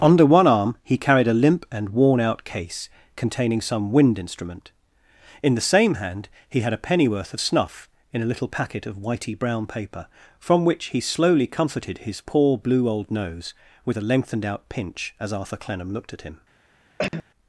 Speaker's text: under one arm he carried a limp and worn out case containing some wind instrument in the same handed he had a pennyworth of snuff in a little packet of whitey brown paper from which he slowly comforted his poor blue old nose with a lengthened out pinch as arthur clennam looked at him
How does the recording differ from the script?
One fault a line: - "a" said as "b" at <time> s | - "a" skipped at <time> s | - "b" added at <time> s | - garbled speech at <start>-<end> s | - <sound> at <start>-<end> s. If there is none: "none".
- "handed" said as "hand" at 5.9 s
- cough at 17.0-17.2 s